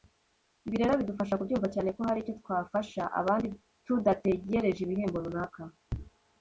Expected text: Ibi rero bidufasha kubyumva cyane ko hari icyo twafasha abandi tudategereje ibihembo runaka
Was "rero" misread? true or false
false